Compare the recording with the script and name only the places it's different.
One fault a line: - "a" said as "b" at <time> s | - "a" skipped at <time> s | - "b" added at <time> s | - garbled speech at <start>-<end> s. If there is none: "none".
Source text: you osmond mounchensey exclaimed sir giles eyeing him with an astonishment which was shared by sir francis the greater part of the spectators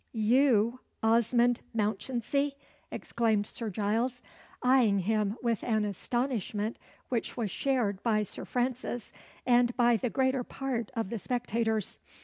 - "and by" added at 9.4 s